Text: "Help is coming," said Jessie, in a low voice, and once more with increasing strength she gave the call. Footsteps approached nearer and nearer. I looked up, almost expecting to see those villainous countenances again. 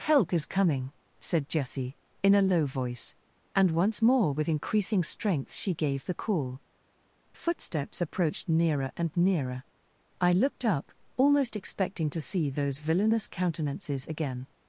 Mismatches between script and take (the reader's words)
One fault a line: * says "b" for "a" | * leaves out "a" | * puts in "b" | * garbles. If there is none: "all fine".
all fine